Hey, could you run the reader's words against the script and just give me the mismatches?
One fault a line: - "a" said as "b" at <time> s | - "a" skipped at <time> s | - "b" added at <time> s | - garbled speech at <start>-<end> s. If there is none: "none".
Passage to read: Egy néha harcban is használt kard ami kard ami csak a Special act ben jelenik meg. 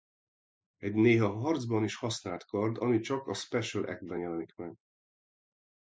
- "kard ami" skipped at 3.0 s